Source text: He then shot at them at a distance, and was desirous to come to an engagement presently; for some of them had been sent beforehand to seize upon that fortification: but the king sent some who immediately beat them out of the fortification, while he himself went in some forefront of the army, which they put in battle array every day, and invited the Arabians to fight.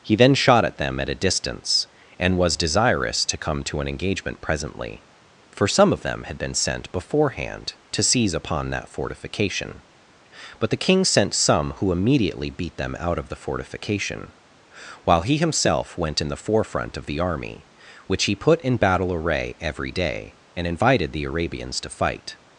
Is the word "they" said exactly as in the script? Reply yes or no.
no